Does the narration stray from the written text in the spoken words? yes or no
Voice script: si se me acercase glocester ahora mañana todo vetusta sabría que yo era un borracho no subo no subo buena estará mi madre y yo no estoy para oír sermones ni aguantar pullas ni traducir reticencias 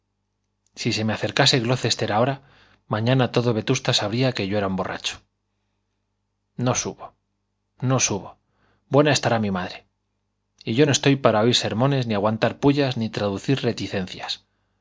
no